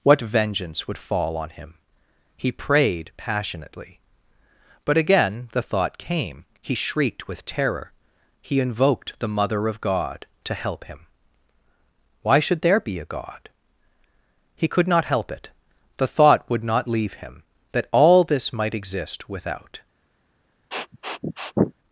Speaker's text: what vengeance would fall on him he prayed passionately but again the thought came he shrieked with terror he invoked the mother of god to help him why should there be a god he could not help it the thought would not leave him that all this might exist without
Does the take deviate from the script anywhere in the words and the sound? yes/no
yes